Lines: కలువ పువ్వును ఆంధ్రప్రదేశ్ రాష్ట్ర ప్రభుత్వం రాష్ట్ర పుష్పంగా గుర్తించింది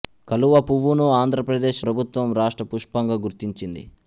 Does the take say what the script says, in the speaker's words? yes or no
no